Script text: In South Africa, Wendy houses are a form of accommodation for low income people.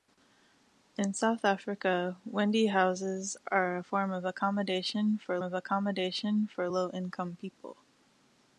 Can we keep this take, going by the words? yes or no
no